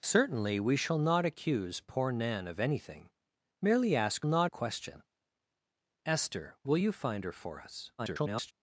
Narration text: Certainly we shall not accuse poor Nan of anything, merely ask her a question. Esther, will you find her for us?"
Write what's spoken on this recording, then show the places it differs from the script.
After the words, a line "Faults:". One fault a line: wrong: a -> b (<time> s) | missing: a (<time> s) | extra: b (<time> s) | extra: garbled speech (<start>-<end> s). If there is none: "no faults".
Certainly we shall not accuse poor Nan of anything, merely ask not a question. Esther, will you find her for us?" [garbled]
Faults:
wrong: her -> not (4.2 s)
extra: garbled speech (8.0-8.5 s)